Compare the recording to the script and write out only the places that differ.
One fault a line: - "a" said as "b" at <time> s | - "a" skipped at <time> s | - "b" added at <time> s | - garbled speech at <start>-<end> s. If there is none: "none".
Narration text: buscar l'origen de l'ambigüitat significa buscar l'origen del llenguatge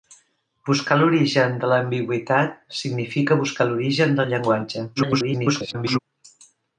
- garbled speech at 5.0-6.0 s